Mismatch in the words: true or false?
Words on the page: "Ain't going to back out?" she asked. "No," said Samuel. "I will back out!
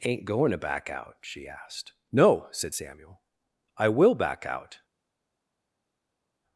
false